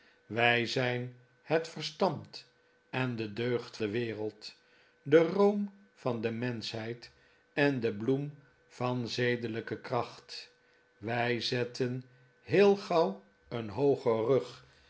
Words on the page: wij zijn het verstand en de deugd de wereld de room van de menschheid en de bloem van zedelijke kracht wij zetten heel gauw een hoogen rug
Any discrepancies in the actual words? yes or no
no